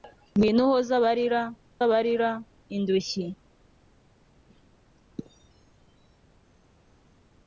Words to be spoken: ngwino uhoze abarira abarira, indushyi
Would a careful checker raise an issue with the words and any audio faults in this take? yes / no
no